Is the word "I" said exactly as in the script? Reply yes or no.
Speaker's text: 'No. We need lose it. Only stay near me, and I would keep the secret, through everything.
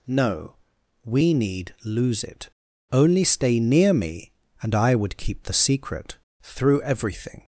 yes